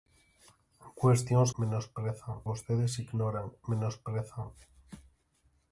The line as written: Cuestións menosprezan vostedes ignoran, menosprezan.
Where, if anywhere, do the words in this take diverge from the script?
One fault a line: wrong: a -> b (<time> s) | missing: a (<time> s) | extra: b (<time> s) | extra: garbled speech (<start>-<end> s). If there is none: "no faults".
no faults